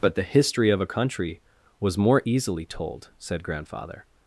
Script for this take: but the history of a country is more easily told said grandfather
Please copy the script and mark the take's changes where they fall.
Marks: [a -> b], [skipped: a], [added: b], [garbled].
but the history of a country [is -> was] more easily told said grandfather